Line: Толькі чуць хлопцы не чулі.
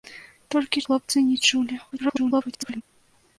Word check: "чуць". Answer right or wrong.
wrong